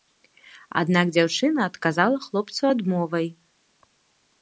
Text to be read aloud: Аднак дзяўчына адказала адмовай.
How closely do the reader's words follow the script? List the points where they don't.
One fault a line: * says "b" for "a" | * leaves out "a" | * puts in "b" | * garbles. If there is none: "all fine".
* puts in "хлопцу"